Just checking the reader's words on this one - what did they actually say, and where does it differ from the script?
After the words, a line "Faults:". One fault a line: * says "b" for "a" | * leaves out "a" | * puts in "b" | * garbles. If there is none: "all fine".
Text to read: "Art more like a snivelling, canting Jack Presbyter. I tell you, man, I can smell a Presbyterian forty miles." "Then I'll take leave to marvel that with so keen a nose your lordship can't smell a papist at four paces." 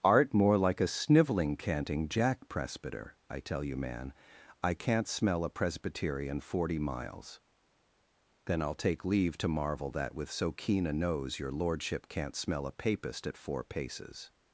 "Art more like a snivelling, canting Jack Presbyter. I tell you, man, I can't smell a Presbyterian forty miles." "Then I'll take leave to marvel that with so keen a nose your lordship can't smell a papist at four paces."
Faults:
* says "can't" for "can"